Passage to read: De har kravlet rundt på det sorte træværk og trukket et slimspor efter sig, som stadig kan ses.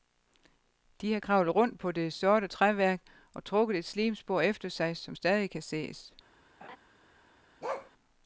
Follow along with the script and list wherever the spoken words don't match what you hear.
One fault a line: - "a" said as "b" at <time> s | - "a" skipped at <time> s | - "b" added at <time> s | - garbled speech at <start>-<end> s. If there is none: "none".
none